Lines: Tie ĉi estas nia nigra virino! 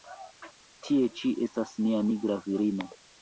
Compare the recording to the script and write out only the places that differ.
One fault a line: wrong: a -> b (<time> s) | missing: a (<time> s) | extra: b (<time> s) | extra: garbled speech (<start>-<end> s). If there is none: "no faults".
no faults